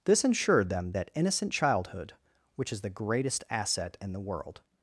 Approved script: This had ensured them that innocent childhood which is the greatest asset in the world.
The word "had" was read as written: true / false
false